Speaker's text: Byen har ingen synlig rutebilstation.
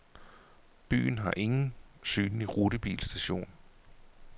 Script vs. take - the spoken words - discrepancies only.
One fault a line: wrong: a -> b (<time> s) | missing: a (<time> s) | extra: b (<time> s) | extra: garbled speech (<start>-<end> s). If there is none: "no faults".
no faults